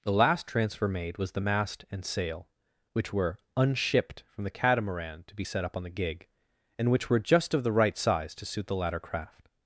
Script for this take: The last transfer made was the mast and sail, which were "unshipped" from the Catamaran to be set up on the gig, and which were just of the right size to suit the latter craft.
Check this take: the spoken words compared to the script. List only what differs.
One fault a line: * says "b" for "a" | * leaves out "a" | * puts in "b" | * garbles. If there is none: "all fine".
all fine